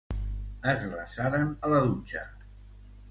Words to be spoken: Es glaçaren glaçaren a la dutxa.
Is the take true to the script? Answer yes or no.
no